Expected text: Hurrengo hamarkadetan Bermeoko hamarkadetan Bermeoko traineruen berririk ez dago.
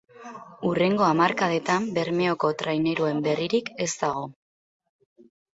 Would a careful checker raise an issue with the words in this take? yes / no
yes